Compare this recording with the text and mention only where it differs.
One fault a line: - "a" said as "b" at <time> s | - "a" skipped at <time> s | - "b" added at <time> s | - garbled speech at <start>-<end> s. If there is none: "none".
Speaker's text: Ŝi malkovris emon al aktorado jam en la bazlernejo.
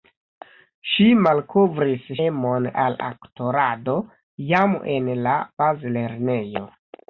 none